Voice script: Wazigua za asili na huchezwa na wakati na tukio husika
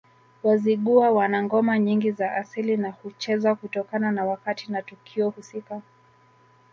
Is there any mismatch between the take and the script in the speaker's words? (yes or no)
yes